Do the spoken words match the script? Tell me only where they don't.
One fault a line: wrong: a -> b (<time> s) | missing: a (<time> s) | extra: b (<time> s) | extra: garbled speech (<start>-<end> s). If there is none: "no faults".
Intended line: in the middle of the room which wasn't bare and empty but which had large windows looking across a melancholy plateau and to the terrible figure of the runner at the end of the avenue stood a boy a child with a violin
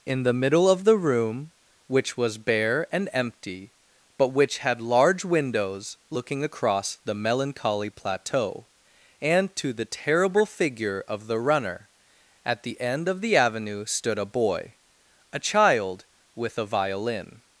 wrong: wasn't -> was (2.2 s)
wrong: a -> the (7.0 s)